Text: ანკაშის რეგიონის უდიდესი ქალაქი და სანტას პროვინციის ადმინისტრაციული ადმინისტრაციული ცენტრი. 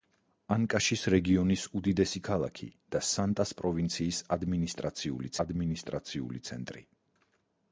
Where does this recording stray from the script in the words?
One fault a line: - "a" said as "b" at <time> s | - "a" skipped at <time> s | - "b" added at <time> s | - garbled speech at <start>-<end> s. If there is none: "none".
none